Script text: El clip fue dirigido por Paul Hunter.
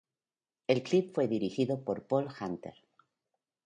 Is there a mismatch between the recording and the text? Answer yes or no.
no